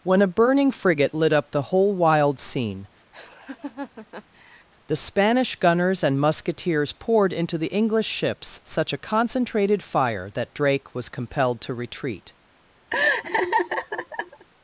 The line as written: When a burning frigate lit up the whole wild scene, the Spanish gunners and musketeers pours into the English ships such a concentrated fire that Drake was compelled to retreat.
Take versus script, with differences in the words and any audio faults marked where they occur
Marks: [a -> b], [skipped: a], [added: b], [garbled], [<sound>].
When a burning frigate lit up the whole wild scene, [laugh] the Spanish gunners and musketeers [pours -> poured] into the English ships such a concentrated fire that Drake was compelled to retreat. [laugh]